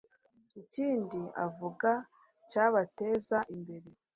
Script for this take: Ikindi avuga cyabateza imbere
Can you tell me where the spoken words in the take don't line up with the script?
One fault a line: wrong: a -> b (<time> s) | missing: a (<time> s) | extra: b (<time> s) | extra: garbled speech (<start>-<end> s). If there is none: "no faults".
no faults